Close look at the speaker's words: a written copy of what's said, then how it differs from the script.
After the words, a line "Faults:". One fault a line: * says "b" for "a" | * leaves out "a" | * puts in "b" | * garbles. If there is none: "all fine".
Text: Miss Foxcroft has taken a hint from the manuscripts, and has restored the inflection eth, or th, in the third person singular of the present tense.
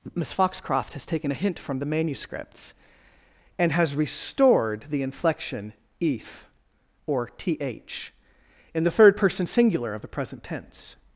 Miss Foxcroft has taken a hint from the manuscripts, and has restored the inflection eth, or th, in the third person singular of the present tense.
Faults:
all fine